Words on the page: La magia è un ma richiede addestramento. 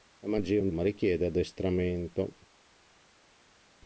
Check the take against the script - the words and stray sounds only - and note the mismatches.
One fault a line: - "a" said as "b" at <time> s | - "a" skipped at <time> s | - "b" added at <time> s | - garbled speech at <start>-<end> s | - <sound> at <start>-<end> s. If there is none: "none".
none